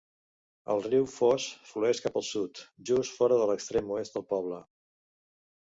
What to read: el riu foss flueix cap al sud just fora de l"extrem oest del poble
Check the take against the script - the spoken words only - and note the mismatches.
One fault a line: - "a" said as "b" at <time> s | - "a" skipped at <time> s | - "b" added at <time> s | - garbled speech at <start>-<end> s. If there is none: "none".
none